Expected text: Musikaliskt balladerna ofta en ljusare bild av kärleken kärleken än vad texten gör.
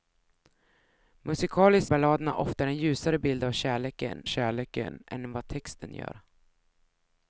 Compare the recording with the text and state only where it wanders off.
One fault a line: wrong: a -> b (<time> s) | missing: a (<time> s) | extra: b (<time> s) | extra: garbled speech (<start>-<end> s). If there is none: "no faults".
no faults